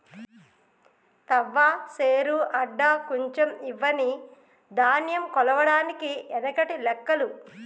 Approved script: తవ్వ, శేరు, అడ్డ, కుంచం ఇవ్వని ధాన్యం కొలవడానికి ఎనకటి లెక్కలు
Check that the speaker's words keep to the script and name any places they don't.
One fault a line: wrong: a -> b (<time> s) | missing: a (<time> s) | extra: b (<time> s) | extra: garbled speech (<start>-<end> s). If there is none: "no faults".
no faults